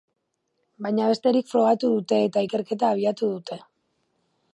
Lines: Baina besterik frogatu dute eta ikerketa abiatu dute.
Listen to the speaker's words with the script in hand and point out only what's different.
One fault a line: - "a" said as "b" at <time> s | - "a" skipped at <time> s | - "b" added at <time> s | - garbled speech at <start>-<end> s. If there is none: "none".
none